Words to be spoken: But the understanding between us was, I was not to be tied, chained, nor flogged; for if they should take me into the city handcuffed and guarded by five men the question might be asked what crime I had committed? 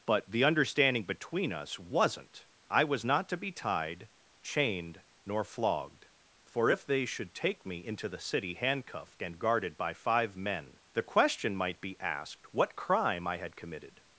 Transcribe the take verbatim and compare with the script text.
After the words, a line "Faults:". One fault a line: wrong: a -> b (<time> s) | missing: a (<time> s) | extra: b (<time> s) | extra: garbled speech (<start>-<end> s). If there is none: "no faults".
But the understanding between us wasn't, I was not to be tied, chained, nor flogged; for if they should take me into the city handcuffed and guarded by five men the question might be asked what crime I had committed?
Faults:
wrong: was -> wasn't (1.8 s)